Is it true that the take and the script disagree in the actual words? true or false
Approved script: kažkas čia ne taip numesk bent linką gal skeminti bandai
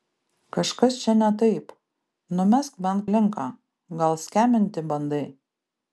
false